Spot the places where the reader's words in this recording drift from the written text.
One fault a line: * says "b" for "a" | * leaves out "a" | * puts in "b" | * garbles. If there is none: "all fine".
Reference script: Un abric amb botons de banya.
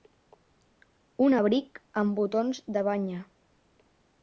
all fine